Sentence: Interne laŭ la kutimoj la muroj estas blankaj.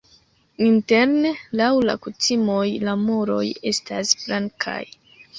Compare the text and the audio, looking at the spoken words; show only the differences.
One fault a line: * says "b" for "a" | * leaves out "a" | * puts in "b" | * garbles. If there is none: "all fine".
all fine